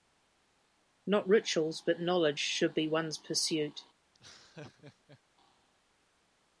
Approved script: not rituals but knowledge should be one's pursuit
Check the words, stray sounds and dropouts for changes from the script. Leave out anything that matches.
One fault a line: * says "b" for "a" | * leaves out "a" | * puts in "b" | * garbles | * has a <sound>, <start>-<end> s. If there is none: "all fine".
* has a laugh, 4.1-5.2 s